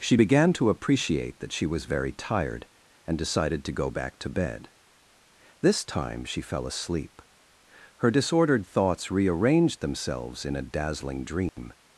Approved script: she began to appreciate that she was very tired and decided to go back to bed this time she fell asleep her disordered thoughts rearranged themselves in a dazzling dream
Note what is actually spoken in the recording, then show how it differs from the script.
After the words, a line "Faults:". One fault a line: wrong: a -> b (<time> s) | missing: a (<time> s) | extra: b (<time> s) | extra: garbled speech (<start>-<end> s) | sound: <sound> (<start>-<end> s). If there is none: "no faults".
she began to appreciate that she was very tired and decided to go back to bed this time she fell asleep her disordered thoughts rearranged themselves in a dazzling dream
Faults:
sound: dropout (11.5-11.6 s)